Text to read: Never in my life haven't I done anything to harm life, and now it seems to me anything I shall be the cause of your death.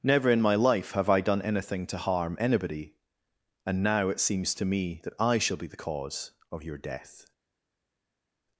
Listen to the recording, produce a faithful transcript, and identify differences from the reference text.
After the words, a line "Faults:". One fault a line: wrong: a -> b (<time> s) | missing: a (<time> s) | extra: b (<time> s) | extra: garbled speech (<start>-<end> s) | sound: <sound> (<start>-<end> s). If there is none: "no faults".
Never in my life have I done anything to harm anybody, and now it seems to me that I shall be the cause of your death.
Faults:
wrong: haven't -> have (0.9 s)
wrong: life -> anybody (2.4 s)
wrong: anything -> that (5.0 s)